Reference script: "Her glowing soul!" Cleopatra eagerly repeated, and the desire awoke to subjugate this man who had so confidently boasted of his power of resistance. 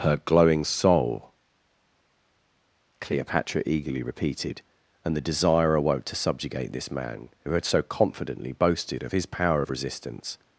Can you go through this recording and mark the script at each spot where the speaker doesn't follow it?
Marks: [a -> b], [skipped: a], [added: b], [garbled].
"Her glowing soul!" Cleopatra eagerly repeated, and the desire awoke to subjugate this man who had so confidently boasted of his power of resistance.